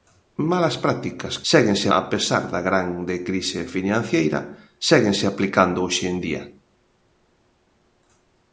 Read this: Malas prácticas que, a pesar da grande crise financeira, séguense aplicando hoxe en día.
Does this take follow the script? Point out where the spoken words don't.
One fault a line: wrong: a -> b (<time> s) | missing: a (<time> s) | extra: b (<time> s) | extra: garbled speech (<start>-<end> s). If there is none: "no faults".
wrong: que -> séguense (1.5 s)